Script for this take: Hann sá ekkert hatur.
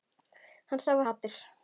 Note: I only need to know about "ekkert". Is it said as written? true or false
false